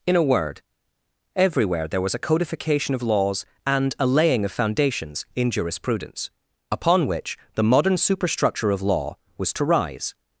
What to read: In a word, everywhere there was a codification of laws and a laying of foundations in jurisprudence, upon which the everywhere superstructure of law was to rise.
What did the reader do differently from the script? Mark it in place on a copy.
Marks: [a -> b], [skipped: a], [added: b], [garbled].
In a word, everywhere there was a codification of laws and a laying of foundations in jurisprudence, upon which the [everywhere -> modern] superstructure of law was to rise.